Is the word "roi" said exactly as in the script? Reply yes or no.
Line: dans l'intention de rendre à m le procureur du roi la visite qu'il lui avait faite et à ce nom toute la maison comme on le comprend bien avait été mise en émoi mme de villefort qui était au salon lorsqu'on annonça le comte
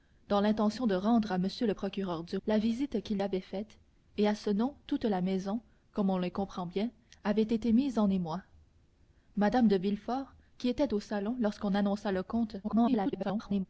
no